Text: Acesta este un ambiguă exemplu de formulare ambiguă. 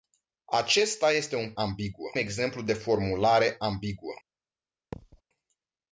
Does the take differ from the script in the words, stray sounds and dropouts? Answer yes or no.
yes